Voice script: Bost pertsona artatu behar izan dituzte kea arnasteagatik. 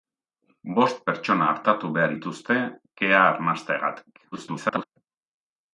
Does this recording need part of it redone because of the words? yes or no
yes